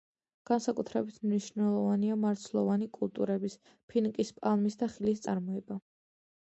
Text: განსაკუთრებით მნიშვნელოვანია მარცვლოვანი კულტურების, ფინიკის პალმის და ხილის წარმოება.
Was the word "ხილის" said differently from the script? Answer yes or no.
no